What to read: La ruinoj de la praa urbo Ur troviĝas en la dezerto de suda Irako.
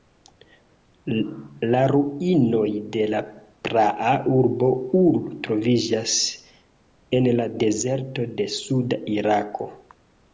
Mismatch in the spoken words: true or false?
false